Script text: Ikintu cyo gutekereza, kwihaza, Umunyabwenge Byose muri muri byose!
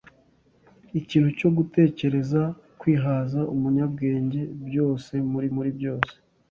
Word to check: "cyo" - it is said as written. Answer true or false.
true